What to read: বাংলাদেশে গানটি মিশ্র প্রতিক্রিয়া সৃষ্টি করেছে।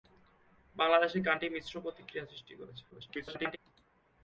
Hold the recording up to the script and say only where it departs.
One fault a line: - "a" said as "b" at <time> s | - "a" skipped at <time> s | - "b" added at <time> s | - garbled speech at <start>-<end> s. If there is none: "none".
- garbled speech at 2.9-3.6 s